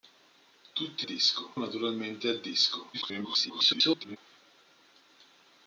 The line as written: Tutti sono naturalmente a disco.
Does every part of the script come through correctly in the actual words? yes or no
no